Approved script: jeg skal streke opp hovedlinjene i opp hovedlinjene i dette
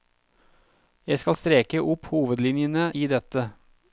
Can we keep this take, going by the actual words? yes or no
no